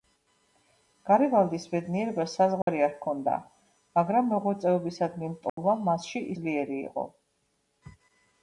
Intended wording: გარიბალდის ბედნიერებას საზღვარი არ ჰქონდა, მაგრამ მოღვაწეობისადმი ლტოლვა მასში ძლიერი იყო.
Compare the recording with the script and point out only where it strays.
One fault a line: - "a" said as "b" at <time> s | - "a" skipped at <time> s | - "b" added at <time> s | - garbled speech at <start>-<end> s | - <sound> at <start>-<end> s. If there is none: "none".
- dropout at 2.6-2.7 s
- dropout at 5.5-5.6 s